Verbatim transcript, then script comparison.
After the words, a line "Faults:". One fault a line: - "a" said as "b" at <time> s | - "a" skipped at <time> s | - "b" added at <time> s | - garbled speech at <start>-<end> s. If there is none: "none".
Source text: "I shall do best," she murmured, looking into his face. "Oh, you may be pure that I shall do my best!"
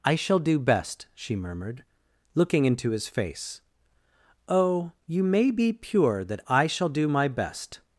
"I shall do best," she murmured, looking into his face. "Oh, you may be pure that I shall do my best!"
Faults:
none